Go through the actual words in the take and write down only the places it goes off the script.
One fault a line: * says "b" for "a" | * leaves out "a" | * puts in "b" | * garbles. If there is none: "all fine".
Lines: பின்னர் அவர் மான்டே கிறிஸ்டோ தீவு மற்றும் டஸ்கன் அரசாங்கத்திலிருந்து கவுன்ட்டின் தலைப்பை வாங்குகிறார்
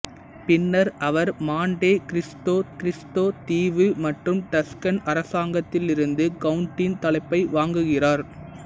* puts in "கிறிஸ்டோ"